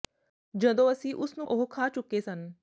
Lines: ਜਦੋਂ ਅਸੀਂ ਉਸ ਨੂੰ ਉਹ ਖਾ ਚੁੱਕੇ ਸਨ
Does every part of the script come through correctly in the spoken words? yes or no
yes